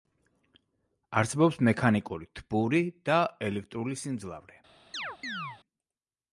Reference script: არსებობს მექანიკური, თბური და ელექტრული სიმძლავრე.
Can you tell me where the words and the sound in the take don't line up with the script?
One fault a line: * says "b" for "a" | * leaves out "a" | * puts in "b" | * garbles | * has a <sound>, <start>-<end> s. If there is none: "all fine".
* has a chirp, 4.9-5.6 s